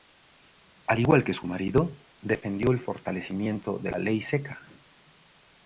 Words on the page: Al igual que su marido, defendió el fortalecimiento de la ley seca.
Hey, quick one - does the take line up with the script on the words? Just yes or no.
yes